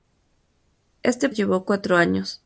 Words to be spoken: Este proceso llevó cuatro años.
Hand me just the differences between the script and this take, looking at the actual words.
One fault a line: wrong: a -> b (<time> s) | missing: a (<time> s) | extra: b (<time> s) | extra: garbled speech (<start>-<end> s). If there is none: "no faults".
missing: proceso (1.3 s)